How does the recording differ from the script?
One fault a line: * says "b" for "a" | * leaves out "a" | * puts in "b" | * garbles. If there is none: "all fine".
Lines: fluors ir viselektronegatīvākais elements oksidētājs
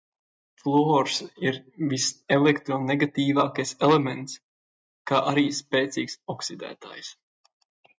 * puts in "kā arī spēcīgs"